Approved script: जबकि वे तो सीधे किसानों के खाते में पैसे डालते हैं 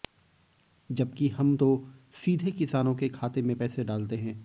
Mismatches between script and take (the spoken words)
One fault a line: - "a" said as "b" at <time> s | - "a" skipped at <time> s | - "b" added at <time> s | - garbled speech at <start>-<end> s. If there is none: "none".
- "वे" said as "हम" at 1.3 s